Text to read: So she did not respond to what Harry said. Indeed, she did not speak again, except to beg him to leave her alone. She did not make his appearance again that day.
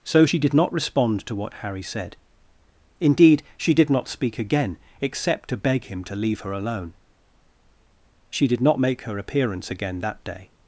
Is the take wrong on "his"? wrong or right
wrong